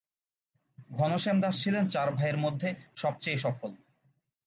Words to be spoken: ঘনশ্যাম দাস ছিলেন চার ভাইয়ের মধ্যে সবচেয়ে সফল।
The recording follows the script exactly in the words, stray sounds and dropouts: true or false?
true